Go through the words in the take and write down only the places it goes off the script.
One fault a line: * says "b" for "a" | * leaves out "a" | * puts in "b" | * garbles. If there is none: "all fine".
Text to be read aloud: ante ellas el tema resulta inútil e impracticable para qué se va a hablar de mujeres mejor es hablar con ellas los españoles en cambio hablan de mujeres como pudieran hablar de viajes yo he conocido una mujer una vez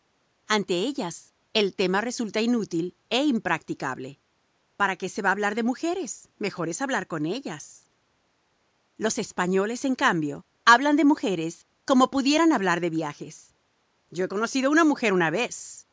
all fine